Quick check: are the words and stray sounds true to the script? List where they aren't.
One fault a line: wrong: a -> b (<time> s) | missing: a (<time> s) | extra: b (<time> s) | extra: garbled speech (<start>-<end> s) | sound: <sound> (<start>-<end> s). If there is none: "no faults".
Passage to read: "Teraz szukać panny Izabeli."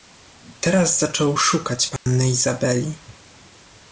extra: zaczął (1.0 s)
sound: dropout (2.0-2.1 s)